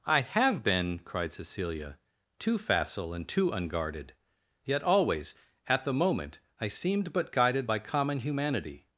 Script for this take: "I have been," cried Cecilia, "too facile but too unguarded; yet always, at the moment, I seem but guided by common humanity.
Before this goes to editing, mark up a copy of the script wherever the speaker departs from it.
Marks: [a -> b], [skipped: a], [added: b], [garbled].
"I have been," cried Cecilia, "too facile [but -> and] too unguarded; yet always, at the moment, I [seem -> seemed] but guided by common humanity.